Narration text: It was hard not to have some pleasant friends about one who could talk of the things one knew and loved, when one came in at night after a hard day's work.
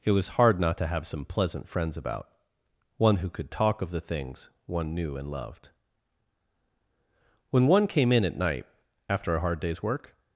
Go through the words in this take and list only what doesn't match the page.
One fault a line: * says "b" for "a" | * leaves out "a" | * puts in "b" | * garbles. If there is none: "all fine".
all fine